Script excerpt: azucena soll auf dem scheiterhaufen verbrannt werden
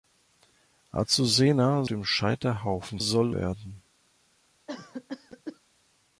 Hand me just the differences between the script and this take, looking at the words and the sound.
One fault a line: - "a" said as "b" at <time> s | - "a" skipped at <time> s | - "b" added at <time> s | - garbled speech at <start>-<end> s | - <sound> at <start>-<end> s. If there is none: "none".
- "soll auf" skipped at 1.9 s
- "verbrannt" said as "soll" at 3.0 s
- cough at 4.7-5.6 s